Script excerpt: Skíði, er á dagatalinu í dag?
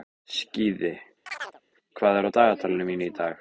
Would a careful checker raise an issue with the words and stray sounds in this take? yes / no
yes